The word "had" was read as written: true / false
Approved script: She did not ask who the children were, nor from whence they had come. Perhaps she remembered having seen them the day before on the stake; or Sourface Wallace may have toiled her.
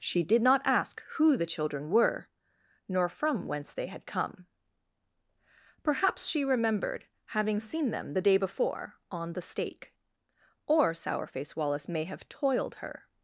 true